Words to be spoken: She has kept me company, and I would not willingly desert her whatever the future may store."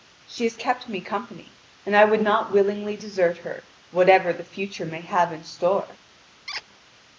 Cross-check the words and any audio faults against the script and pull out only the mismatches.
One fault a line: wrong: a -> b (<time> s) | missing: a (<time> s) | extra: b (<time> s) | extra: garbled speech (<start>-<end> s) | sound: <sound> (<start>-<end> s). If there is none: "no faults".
extra: have in (5.0 s)
sound: squeak (6.5-6.6 s)